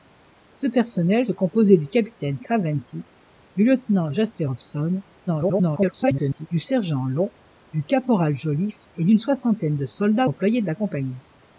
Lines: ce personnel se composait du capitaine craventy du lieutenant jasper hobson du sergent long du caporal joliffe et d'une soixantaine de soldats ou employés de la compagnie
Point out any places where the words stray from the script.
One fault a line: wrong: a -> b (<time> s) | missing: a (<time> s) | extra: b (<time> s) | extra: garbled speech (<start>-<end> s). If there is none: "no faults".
missing: se (1.3 s)
extra: garbled speech (5.3-6.5 s)
missing: ou (10.3 s)